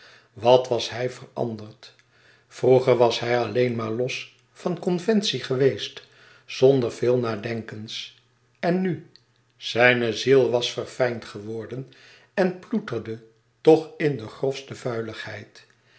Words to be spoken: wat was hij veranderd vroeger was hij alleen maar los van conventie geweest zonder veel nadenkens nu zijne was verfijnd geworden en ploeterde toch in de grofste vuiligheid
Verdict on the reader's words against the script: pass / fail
fail